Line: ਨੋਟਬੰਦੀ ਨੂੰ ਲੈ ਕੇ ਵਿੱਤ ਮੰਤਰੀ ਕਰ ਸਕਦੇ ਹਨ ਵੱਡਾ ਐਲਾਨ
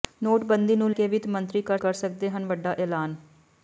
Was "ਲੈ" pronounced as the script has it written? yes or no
no